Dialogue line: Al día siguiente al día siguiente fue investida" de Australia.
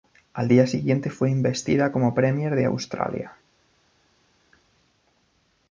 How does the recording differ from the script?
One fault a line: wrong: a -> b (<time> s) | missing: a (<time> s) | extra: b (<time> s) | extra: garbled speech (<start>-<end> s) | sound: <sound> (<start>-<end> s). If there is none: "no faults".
wrong: al día siguiente fue investida -> fue investida como premier (1.1 s)